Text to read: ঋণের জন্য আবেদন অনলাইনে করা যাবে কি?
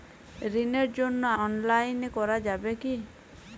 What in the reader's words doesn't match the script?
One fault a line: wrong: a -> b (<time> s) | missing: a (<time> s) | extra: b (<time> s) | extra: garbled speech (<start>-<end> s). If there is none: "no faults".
missing: আবেদন (1.2 s)